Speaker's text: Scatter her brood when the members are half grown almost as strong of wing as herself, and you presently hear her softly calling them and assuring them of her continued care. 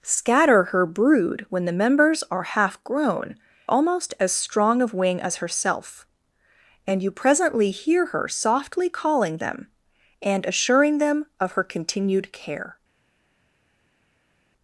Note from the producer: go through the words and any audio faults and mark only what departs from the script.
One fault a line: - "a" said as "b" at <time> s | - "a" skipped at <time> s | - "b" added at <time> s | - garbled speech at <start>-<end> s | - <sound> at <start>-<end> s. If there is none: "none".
none